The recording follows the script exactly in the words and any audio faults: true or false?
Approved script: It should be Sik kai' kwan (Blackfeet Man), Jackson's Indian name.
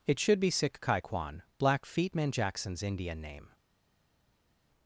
true